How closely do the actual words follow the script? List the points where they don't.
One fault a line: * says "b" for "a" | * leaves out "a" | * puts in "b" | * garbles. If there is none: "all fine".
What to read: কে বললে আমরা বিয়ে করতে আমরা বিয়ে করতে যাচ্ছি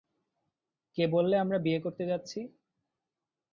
* leaves out "আমরা বিয়ে করতে"